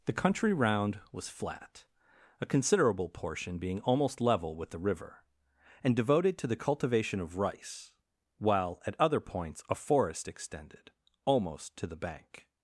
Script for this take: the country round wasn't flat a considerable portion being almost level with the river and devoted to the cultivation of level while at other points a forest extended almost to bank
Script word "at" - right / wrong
right